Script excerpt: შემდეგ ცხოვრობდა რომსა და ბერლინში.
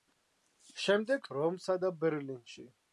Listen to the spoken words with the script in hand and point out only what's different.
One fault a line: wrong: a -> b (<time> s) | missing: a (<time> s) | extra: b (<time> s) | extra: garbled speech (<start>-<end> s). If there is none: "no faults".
missing: ცხოვრობდა (1.3 s)